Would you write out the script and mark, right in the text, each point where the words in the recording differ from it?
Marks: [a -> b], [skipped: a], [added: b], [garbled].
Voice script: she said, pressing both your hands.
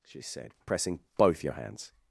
she said, pressing both your hands.